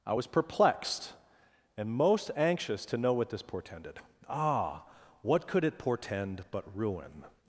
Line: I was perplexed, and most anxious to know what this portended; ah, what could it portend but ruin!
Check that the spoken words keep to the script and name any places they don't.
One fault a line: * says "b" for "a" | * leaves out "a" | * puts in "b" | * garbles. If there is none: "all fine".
all fine